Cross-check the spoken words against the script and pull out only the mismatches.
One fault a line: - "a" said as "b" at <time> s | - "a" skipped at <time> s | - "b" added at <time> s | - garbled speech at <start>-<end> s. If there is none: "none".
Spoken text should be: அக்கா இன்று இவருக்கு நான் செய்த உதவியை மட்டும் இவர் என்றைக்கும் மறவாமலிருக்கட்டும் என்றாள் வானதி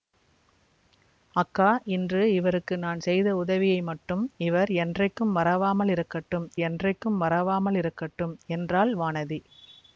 - "என்றைக்கும் மறவாமலிருக்கட்டும்" added at 6.7 s